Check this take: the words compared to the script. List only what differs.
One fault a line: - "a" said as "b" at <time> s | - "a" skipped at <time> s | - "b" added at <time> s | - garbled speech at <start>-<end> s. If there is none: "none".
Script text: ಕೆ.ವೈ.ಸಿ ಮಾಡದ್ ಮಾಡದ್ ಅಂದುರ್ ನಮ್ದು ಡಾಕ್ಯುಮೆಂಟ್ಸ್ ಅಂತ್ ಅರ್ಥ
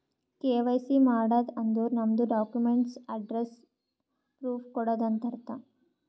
- "ಮಾಡದ್" skipped at 1.5 s
- "ಅಡ್ರೆಸ್ಸ್ ಪ್ರೂಫ್ ಕೊಡದು" added at 3.1 s